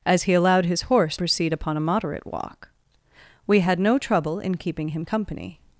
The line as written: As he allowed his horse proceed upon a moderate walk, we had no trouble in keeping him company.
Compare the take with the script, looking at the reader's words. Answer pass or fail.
pass